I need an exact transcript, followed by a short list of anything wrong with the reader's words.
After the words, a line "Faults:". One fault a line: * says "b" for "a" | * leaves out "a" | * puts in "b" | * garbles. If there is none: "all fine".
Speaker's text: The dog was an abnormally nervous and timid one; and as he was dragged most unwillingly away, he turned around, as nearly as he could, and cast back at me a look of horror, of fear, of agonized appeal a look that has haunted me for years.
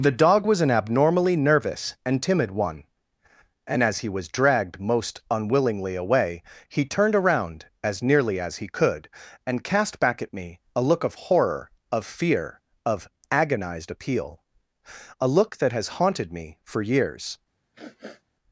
The dog was an abnormally nervous and timid one; and as he was dragged most unwillingly away, he turned around, as nearly as he could, and cast back at me a look of horror, of fear, of agonized appeal a look that has haunted me for years.
Faults:
all fine